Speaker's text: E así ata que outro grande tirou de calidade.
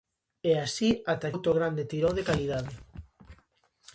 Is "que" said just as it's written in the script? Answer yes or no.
no